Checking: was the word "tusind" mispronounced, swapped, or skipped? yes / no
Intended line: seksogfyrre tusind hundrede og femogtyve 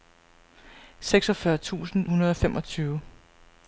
no